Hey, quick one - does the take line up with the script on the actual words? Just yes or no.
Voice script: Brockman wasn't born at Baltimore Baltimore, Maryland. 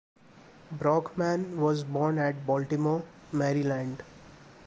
no